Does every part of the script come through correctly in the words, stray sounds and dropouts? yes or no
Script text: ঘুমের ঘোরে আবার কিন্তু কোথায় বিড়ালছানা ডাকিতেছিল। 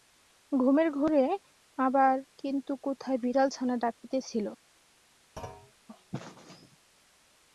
no